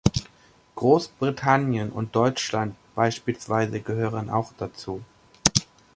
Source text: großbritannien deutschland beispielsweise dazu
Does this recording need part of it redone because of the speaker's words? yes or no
yes